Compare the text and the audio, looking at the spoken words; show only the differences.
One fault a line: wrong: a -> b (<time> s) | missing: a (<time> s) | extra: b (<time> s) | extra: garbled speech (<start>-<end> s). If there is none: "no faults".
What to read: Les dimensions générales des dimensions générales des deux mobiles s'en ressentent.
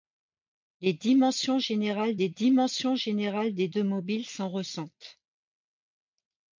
no faults